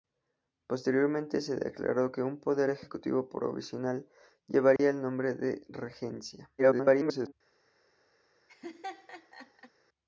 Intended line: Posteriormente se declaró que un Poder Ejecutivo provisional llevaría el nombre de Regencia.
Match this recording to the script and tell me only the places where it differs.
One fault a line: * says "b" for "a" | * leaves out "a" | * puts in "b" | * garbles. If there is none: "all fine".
* garbles